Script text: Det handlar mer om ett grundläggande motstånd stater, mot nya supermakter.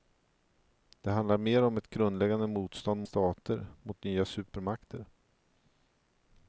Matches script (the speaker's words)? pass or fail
pass